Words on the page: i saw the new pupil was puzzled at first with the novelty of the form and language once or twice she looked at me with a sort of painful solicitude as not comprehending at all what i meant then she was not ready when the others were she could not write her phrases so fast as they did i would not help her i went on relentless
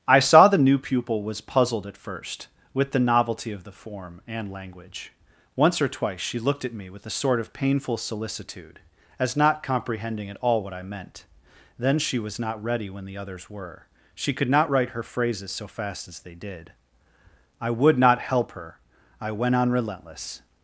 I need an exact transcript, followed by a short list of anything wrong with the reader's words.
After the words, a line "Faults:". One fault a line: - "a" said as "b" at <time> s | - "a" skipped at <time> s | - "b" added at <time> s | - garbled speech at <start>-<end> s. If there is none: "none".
i saw the new pupil was puzzled at first with the novelty of the form and language once or twice she looked at me with a sort of painful solicitude as not comprehending at all what i meant then she was not ready when the others were she could not write her phrases so fast as they did i would not help her i went on relentless
Faults:
none